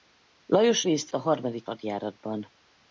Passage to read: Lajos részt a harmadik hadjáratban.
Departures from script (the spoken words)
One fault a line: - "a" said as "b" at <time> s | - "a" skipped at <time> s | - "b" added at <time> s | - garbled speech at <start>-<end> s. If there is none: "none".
none